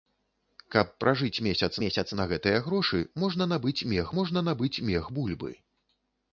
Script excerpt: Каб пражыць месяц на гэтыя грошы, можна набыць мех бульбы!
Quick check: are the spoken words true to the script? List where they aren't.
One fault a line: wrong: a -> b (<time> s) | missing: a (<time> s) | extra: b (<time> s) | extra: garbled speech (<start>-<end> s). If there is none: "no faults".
extra: месяц (1.8 s)
extra: можна набыць мех (4.2 s)